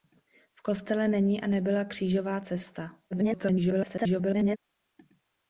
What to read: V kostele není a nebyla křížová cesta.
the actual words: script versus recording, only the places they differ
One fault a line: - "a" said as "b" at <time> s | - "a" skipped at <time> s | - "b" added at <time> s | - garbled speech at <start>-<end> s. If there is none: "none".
- garbled speech at 3.1-4.6 s